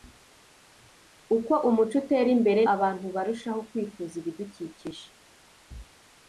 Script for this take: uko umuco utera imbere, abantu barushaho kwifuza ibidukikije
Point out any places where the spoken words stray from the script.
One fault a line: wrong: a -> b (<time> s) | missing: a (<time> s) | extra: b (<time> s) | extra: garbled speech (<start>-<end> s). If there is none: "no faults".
no faults